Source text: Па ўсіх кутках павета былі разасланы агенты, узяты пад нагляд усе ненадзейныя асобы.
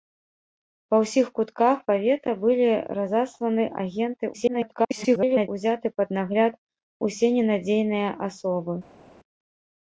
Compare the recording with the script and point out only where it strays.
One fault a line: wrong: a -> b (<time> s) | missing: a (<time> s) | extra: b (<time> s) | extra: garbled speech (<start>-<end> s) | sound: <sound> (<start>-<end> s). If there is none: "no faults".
extra: garbled speech (4.3-5.5 s)